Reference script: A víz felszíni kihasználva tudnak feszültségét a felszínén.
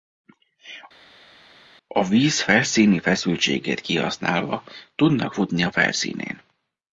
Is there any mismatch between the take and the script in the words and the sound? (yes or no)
yes